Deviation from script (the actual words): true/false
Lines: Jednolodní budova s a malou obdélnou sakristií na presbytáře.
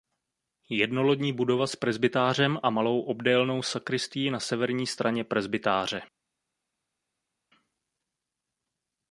true